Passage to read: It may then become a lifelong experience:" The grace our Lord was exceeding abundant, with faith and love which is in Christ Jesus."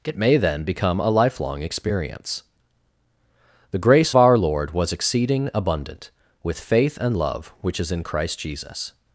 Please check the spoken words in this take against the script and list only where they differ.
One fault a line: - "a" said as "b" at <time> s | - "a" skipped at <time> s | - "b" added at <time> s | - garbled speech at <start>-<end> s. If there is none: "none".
none